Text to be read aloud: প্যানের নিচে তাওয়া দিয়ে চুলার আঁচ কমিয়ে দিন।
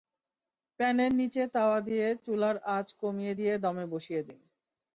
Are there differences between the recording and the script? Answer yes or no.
yes